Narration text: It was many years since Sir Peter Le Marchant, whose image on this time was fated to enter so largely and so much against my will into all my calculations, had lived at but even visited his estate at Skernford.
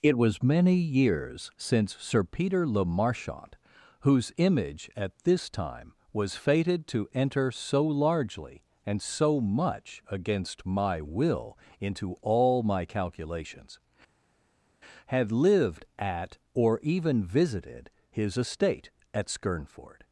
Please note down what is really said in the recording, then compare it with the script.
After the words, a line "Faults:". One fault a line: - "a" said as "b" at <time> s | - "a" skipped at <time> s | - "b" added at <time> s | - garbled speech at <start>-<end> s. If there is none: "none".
It was many years since Sir Peter Le Marchant, whose image at this time was fated to enter so largely and so much against my will into all my calculations, had lived at or even visited his estate at Skernford.
Faults:
- "on" said as "at" at 5.0 s
- "but" said as "or" at 16.5 s